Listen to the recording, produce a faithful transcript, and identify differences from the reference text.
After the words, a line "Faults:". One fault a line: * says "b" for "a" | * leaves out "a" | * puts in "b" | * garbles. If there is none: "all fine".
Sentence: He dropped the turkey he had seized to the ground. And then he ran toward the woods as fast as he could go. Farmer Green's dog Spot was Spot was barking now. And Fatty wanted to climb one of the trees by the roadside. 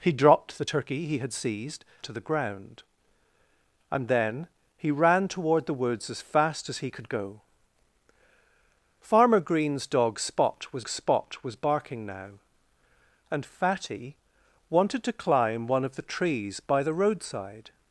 He dropped the turkey he had seized to the ground. And then he ran toward the woods as fast as he could go. Farmer Green's dog Spot was Spot was barking now. And Fatty wanted to climb one of the trees by the roadside.
Faults:
all fine